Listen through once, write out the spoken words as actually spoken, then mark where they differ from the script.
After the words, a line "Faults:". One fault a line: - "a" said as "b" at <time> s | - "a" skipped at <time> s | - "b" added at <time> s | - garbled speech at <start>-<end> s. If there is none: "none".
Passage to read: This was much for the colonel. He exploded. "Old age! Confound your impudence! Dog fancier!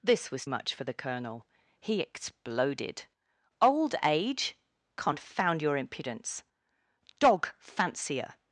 This was much for the colonel. He exploded. "Old age! Confound your impudence! Dog fancier!
Faults:
none